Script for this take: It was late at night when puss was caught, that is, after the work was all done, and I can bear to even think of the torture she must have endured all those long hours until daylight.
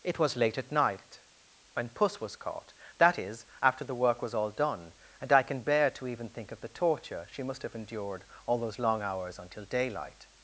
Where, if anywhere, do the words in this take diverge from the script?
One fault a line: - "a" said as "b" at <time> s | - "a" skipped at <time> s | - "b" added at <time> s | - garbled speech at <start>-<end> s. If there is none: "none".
none